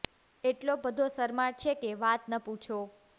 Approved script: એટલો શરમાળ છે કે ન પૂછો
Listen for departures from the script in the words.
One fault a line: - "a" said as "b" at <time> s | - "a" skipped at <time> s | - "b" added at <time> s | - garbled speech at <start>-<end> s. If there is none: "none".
- "બધો" added at 0.8 s
- "વાત" added at 2.0 s